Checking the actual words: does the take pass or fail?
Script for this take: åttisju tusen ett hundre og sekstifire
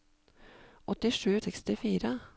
fail